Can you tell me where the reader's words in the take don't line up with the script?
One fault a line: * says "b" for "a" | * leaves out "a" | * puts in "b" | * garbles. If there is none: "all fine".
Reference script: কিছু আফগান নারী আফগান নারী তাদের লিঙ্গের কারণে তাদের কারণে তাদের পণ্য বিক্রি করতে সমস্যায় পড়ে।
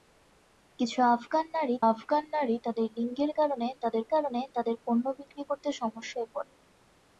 all fine